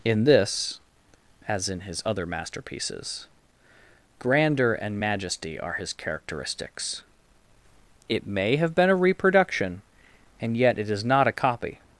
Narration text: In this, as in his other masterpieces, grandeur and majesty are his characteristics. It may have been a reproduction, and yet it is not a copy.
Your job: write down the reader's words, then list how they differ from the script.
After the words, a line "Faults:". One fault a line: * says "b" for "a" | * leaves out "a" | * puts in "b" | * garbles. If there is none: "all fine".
In this, as in his other masterpieces, grandeur and majesty are his characteristics. It may have been a reproduction, and yet it is not a copy.
Faults:
all fine